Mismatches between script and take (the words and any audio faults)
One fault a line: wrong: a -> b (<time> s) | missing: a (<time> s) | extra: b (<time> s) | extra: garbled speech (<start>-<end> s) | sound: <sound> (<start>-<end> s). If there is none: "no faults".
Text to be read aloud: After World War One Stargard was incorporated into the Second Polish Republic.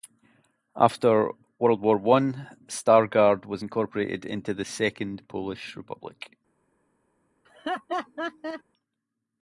sound: laugh (7.4-8.6 s)